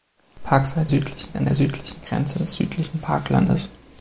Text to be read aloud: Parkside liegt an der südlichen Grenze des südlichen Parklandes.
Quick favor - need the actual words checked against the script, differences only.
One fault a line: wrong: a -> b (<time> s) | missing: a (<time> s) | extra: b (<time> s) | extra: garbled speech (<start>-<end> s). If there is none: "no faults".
wrong: liegt -> südlichen (0.9 s)